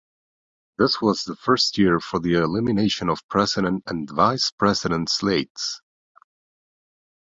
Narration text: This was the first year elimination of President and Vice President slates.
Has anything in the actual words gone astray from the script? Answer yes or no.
yes